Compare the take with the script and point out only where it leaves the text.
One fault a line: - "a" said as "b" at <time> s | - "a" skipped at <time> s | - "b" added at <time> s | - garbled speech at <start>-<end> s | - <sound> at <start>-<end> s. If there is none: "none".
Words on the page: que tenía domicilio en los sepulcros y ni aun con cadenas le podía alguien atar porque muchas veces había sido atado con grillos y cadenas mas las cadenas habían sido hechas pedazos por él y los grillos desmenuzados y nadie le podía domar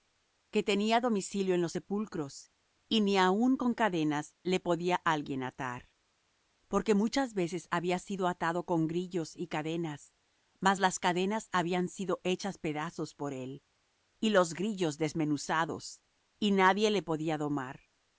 none